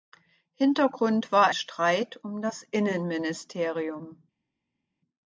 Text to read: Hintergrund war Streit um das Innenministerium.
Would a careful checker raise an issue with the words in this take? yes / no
no